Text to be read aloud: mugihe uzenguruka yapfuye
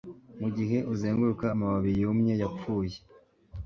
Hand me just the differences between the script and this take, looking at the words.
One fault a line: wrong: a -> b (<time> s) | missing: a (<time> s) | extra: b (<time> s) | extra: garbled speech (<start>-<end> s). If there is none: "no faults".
extra: amababi yumye (1.5 s)